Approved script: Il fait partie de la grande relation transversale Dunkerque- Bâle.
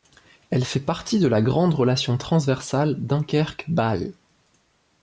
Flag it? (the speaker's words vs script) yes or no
yes